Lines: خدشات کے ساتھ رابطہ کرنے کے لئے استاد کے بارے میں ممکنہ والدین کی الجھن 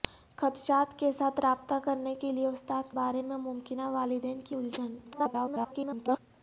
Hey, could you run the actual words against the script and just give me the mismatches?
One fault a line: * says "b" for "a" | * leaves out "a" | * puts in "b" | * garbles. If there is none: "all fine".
* leaves out "کے"
* garbles